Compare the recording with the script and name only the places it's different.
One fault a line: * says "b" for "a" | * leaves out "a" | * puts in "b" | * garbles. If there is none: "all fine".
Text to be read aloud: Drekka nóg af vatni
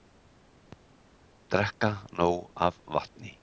all fine